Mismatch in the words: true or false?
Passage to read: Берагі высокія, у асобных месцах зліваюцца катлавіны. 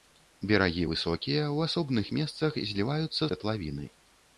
false